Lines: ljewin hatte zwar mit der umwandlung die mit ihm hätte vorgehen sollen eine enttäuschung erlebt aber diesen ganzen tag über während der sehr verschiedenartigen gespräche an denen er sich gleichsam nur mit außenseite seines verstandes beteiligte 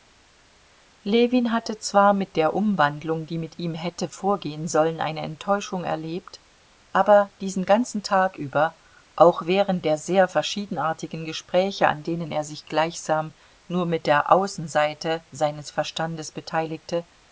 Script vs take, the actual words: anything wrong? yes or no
yes